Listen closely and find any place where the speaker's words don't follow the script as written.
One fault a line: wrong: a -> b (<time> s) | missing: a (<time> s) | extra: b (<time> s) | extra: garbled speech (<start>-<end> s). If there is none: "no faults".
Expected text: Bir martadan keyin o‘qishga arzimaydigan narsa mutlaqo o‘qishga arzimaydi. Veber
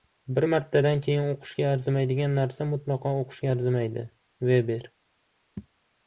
no faults